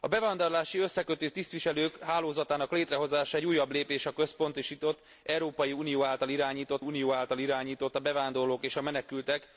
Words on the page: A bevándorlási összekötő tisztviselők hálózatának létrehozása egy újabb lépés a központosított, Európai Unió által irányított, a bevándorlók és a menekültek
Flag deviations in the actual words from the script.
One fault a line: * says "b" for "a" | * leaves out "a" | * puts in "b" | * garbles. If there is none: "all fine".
* puts in "Unió által irányított"